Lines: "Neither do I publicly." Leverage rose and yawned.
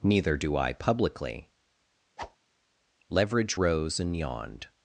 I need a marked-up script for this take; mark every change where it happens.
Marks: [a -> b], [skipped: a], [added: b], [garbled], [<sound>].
"Neither do I publicly." [whoosh] Leverage rose and yawned.